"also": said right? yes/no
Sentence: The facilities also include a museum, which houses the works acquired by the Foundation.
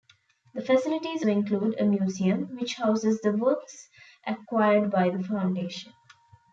no